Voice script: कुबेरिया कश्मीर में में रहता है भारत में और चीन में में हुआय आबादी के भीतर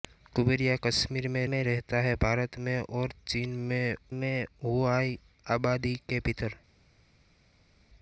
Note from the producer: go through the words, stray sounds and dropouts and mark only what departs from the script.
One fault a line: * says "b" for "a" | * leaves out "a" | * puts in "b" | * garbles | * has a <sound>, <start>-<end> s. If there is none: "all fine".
all fine